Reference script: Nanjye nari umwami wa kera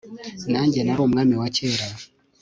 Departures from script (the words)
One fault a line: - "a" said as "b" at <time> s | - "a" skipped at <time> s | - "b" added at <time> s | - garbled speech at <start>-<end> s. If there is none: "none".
none